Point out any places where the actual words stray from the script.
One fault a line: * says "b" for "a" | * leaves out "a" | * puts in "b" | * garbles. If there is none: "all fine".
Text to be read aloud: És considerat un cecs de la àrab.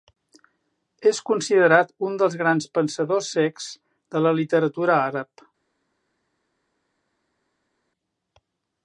* puts in "dels grans pensadors"
* puts in "literatura"